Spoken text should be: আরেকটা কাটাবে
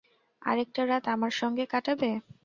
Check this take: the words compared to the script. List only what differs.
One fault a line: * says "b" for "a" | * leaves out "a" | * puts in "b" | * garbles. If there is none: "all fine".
* puts in "রাত আমার সঙ্গে"